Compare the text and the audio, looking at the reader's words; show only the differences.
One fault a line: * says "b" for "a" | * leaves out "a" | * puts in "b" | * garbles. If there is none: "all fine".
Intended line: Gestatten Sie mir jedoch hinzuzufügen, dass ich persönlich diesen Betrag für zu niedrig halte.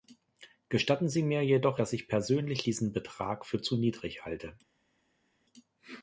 * leaves out "hinzuzufügen"